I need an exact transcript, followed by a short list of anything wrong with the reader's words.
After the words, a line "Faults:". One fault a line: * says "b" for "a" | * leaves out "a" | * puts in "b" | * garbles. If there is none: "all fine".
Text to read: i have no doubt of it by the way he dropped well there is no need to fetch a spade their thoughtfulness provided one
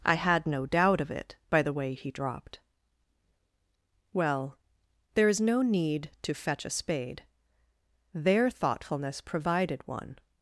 i had no doubt of it by the way he dropped well there is no need to fetch a spade their thoughtfulness provided one
Faults:
* says "had" for "have"